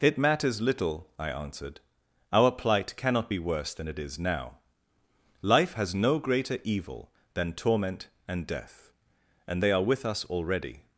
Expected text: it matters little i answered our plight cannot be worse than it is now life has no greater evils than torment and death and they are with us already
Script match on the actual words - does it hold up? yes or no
no